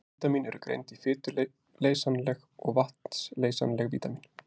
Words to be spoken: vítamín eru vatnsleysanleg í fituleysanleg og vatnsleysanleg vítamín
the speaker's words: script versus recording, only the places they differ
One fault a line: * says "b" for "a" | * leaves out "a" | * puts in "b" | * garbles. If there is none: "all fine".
* says "greind" for "vatnsleysanleg"